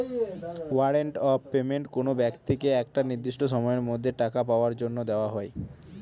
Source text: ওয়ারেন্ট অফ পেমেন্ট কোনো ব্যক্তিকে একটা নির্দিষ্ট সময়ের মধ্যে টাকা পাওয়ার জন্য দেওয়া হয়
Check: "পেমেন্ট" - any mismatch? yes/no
no